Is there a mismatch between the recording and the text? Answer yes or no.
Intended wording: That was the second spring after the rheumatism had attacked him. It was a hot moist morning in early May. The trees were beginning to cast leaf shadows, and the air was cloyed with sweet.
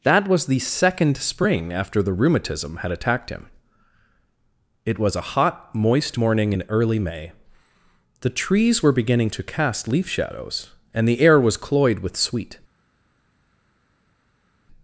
no